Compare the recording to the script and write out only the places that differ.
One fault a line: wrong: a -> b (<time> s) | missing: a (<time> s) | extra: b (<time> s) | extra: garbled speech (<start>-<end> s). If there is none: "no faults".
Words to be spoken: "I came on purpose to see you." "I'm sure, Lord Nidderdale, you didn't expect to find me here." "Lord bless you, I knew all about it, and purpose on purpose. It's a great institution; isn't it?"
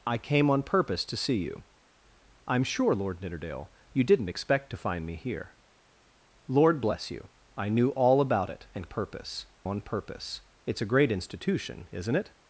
no faults